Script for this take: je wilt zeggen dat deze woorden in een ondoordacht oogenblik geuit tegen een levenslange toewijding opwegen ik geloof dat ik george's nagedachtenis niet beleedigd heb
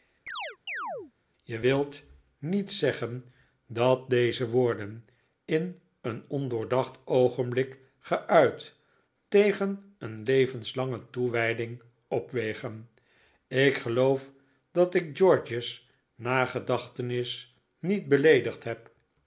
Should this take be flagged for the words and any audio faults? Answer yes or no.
yes